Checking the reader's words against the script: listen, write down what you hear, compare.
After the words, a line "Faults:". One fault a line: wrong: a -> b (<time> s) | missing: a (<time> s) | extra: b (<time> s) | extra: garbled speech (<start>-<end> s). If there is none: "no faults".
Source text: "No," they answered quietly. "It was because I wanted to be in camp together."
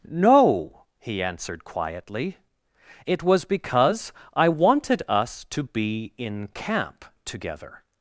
"No," he answered quietly. "It was because I wanted us to be in camp together."
Faults:
wrong: they -> he (1.0 s)
extra: us (5.1 s)